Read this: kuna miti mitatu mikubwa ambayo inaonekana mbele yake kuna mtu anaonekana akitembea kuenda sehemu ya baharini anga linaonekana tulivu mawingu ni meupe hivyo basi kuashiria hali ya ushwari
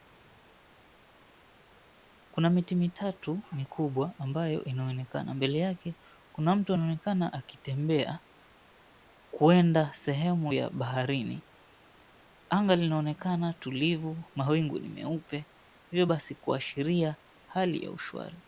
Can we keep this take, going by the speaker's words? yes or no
yes